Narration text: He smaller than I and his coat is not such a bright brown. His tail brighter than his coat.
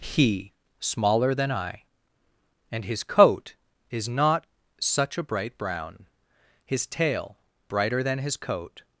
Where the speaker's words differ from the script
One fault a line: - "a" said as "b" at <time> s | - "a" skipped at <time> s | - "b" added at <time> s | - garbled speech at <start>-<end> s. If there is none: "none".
none